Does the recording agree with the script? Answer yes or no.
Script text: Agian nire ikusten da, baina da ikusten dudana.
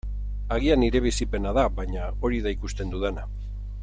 no